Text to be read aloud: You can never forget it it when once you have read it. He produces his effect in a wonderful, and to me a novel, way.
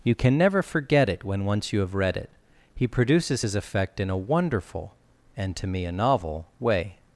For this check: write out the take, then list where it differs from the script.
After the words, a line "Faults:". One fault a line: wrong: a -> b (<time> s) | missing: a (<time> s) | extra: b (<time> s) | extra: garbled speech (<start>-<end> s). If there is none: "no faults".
You can never forget it when once you have read it. He produces his effect in a wonderful, and to me a novel, way.
Faults:
missing: it (1.2 s)